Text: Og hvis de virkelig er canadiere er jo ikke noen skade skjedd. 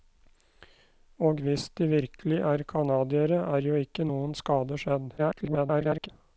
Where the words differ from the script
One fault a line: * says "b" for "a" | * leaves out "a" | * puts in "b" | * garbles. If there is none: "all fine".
* garbles